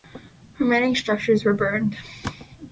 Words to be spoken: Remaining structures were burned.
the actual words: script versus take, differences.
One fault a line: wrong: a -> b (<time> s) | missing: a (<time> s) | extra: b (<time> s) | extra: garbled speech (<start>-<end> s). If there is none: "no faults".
no faults